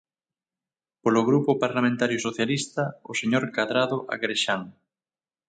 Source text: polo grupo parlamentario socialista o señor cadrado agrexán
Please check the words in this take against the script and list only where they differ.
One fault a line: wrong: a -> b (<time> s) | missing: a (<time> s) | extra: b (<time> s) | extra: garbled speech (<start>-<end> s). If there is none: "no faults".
no faults